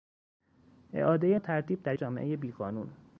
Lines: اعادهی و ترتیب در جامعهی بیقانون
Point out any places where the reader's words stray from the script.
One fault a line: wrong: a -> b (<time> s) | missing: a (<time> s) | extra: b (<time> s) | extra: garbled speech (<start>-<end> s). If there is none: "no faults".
no faults